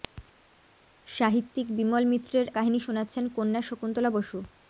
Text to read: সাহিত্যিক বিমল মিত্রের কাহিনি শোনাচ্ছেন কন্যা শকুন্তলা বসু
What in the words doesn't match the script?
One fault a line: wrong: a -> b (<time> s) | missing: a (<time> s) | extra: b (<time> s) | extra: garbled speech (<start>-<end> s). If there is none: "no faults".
no faults